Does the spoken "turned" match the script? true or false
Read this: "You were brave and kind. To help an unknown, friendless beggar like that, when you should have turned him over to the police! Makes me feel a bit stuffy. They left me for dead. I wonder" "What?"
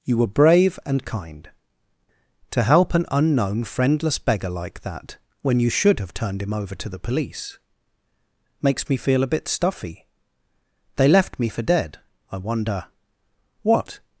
true